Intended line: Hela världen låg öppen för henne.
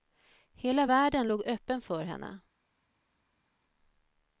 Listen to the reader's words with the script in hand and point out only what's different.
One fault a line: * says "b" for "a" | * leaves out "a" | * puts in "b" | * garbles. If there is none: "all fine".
all fine